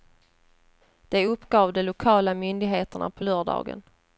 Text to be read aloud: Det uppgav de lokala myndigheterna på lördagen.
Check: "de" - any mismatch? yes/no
no